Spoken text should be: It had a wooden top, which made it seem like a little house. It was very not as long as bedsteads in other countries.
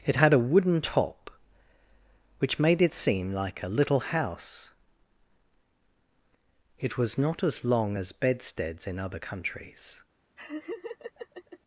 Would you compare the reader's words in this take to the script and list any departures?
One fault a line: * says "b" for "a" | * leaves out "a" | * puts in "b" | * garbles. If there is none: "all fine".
* leaves out "very"